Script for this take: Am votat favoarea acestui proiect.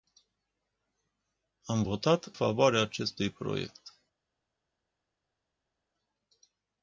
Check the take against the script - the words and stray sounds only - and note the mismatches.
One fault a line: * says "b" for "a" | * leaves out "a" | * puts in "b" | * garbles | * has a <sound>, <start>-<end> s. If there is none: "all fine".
all fine